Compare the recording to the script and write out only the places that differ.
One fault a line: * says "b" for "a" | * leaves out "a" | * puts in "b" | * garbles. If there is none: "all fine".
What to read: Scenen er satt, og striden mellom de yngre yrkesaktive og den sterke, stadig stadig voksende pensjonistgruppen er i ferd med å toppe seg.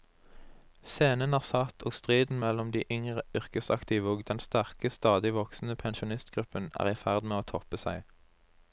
* leaves out "stadig"